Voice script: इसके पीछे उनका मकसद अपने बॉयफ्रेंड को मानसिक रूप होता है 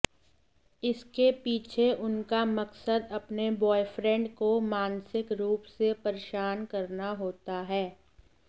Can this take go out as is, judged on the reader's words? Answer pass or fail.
fail